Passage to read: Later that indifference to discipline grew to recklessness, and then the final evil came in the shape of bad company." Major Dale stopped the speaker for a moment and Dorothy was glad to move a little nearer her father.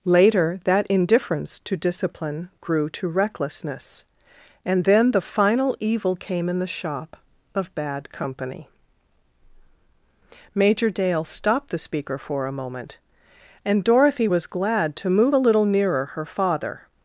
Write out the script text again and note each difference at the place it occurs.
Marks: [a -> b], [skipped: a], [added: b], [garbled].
Later that indifference to discipline grew to recklessness, and then the final evil came in the [shape -> shop] of bad company." Major Dale stopped the speaker for a moment and Dorothy was glad to move a little nearer her father.